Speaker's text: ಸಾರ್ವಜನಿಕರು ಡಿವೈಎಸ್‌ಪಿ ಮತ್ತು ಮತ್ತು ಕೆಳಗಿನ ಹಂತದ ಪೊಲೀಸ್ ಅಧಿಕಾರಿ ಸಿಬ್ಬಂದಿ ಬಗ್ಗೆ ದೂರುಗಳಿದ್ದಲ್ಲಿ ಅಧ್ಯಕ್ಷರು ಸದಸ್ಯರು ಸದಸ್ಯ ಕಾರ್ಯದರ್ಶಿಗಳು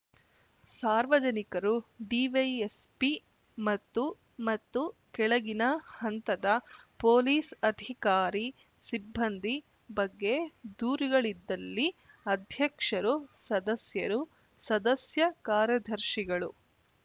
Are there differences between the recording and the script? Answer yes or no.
no